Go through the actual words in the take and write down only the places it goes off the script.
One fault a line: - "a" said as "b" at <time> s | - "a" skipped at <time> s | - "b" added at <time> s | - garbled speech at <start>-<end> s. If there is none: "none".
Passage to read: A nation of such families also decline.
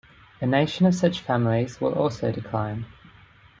- "will" added at 1.8 s